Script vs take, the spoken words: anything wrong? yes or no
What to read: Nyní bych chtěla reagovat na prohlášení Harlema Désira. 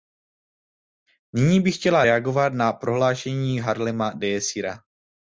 no